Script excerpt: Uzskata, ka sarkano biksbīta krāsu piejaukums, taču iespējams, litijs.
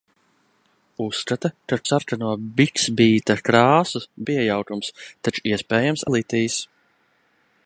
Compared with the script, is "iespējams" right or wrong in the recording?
right